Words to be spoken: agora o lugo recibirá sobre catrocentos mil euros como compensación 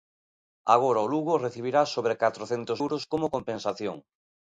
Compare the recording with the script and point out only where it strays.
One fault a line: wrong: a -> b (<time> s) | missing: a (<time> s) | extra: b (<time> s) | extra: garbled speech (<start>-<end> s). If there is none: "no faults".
missing: mil (2.8 s)